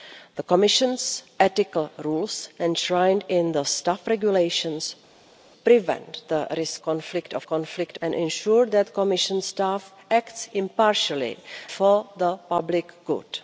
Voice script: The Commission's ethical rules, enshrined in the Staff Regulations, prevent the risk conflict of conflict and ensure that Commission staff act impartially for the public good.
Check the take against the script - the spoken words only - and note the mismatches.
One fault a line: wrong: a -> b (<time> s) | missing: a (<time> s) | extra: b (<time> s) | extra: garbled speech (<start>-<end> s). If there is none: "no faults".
no faults